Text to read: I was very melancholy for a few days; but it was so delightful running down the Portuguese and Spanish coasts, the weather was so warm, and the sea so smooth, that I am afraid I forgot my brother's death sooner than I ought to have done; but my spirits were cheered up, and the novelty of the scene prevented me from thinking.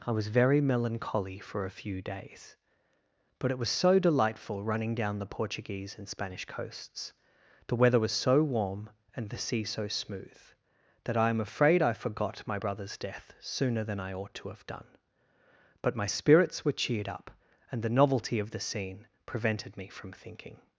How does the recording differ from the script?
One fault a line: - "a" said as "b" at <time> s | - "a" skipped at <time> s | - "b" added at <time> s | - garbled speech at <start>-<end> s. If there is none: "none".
none